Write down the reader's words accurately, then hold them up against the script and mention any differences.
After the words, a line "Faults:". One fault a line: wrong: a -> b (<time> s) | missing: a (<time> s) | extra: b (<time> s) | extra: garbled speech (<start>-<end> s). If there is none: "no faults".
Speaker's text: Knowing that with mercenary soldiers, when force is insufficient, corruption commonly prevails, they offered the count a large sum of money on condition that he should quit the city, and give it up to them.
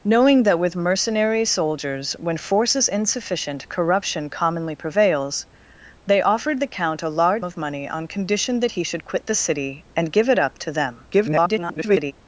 Knowing that with mercenary soldiers, when force is insufficient, corruption commonly prevails, they offered the count a large of money on condition that he should quit the city, and give it up to them. [garbled]
Faults:
missing: sum (7.5 s)
extra: garbled speech (11.1-12.1 s)